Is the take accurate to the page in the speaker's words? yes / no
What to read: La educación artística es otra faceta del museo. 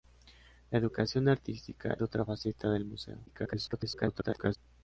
no